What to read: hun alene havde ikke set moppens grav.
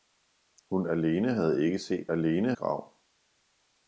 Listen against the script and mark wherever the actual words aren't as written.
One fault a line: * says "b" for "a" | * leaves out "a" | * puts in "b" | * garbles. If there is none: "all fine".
* says "alene" for "moppens"